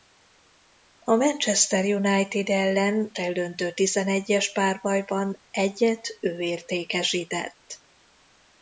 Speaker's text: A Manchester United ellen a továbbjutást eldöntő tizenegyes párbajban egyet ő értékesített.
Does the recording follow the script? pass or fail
fail